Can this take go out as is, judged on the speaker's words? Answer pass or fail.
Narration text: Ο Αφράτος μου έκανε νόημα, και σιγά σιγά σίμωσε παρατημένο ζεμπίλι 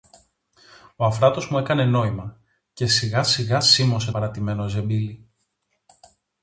pass